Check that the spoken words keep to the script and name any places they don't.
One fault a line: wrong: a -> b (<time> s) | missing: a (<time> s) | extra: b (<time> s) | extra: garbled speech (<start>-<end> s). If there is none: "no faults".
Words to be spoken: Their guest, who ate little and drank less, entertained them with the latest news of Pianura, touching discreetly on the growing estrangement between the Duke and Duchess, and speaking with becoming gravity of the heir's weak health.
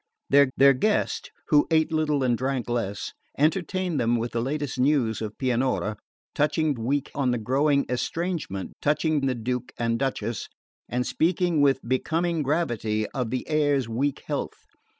extra: their (0.6 s)
wrong: discreetly -> weak (6.8 s)
wrong: between -> touching (8.8 s)